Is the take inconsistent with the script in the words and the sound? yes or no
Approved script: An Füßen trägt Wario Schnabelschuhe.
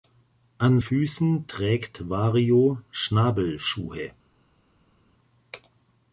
no